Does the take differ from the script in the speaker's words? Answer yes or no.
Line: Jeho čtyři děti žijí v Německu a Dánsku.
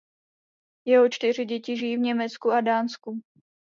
no